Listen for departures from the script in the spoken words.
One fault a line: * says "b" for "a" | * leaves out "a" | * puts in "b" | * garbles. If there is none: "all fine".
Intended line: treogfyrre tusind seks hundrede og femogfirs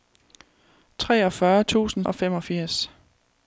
* leaves out "seks hundrede"